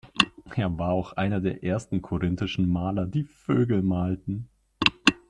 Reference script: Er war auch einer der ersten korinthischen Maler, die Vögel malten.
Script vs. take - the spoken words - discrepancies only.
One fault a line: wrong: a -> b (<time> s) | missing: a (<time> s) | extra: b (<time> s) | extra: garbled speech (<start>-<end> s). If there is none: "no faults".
no faults